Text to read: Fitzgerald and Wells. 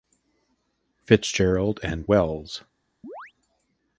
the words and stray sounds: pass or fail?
fail